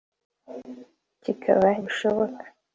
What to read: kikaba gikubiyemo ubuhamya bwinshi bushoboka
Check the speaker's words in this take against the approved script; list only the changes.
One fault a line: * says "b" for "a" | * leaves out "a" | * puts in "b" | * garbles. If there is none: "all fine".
* leaves out "gikubiyemo ubuhamya bwinshi"